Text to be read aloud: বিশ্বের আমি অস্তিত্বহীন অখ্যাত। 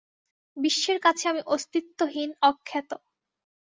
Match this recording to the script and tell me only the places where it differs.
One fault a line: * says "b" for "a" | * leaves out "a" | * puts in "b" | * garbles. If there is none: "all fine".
* puts in "কাছে"